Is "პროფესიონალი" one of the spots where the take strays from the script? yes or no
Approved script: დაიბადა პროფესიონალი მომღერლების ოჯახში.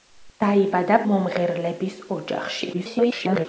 yes